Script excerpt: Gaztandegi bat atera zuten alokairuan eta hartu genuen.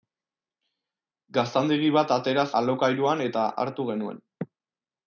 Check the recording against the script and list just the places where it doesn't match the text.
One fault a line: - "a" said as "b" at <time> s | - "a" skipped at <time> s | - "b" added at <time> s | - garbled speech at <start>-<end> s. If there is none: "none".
- "zuten" skipped at 2.5 s